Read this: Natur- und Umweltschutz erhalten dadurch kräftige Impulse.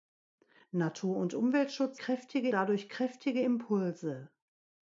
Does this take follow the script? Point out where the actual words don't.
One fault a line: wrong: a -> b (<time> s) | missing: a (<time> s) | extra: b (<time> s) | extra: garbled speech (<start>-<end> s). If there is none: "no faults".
wrong: erhalten -> kräftige (2.0 s)